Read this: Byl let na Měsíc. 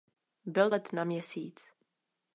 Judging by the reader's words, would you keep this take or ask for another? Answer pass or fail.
pass